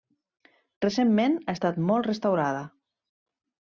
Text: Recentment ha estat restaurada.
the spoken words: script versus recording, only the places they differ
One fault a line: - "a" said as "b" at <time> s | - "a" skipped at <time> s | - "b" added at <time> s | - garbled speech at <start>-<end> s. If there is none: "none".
- "molt" added at 1.9 s